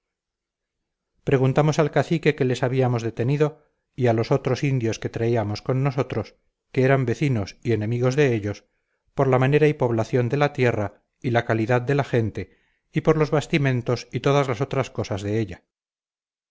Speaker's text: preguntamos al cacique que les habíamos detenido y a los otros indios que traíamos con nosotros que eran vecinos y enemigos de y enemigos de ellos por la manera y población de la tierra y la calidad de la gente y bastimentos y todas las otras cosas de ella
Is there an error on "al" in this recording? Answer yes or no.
no